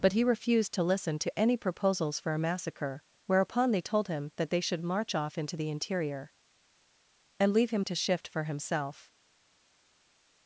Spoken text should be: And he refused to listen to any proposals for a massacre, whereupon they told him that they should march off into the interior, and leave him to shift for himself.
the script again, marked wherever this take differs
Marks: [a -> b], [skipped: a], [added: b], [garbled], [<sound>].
[And -> But] he refused to listen to any proposals for a massacre, whereupon they told him that they should march off into the interior, and leave him to shift for himself.